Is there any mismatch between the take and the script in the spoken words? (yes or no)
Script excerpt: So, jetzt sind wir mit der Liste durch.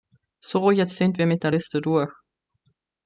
no